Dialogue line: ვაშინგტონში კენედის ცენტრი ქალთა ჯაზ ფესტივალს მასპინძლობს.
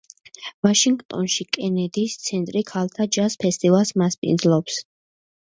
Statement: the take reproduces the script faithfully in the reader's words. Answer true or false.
true